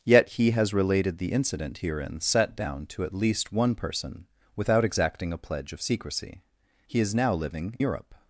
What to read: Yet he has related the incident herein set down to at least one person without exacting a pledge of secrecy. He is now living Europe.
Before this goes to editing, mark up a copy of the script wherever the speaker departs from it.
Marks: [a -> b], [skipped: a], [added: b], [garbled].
Yet he has related the incident herein set down to at least one person without exacting a pledge of secrecy. He is now living Europe.